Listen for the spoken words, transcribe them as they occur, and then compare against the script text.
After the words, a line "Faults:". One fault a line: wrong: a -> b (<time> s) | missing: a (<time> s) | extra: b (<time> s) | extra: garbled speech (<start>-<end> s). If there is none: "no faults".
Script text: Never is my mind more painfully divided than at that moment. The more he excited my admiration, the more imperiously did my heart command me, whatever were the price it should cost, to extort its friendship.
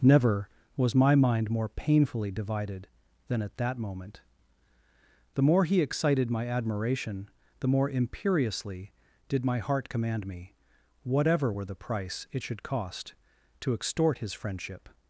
Never was my mind more painfully divided than at that moment. The more he excited my admiration, the more imperiously did my heart command me, whatever were the price it should cost, to extort his friendship.
Faults:
wrong: is -> was (0.8 s)
wrong: its -> his (14.2 s)